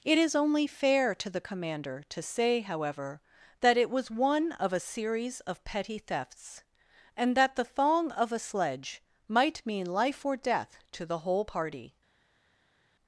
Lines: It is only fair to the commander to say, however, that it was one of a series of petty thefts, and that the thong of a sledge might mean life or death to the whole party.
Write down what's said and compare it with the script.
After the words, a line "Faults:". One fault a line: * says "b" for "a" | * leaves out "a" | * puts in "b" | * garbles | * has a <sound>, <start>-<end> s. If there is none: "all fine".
It is only fair to the commander to say, however, that it was one of a series of petty thefts, and that the thong of a sledge might mean life or death to the whole party.
Faults:
all fine